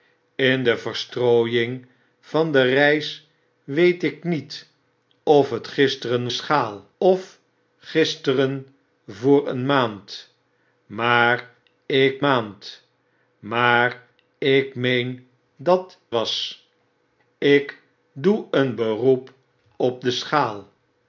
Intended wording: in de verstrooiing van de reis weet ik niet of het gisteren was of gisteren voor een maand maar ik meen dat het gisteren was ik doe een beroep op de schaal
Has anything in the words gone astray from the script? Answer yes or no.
yes